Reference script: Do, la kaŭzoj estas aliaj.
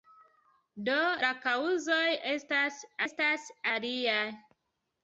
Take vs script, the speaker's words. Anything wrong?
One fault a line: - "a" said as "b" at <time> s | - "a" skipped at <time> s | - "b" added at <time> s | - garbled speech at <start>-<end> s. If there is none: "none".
- "estas" added at 3.1 s